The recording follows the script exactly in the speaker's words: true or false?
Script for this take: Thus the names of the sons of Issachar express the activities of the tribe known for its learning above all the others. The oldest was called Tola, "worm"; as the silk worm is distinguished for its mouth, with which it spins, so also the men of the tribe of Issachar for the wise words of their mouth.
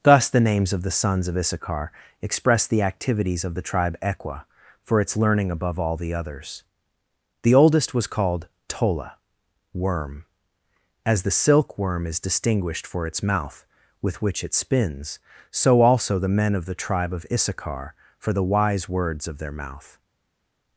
false